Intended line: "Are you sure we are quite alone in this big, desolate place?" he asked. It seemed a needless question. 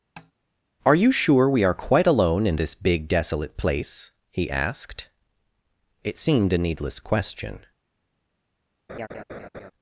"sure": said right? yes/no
yes